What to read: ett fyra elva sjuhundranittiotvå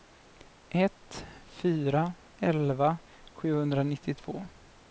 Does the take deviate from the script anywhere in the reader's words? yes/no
no